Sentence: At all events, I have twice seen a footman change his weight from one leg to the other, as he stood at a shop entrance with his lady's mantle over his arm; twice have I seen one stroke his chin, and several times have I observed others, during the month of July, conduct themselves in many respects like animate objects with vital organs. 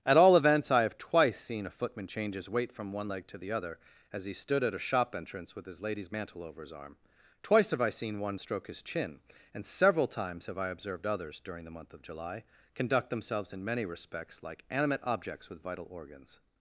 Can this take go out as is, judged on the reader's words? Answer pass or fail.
pass